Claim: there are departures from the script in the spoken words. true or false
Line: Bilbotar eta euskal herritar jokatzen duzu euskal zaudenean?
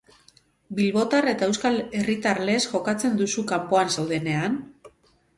true